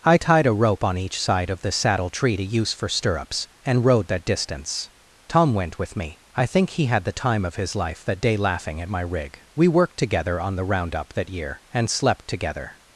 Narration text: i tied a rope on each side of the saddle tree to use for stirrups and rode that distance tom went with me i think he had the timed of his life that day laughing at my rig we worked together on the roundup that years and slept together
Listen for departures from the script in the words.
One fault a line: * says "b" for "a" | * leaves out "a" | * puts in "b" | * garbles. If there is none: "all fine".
* says "time" for "timed"
* says "year" for "years"